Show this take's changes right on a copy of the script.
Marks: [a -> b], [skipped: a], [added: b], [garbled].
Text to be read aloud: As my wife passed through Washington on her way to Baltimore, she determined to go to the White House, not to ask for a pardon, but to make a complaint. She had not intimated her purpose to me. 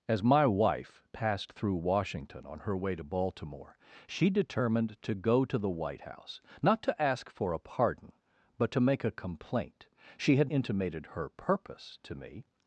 As my wife passed through Washington on her way to Baltimore, she determined to go to the White House, not to ask for a pardon, but to make a complaint. She had [skipped: not] intimated her purpose to me.